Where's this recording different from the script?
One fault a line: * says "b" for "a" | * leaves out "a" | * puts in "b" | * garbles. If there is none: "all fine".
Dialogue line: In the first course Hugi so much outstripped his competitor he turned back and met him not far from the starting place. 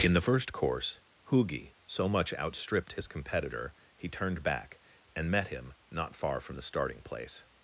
all fine